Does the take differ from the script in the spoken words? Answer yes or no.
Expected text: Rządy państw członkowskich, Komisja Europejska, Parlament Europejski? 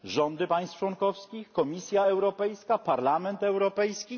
no